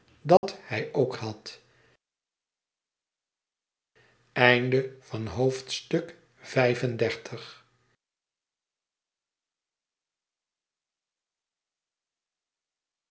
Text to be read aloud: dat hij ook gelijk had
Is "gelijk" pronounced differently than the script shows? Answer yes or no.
yes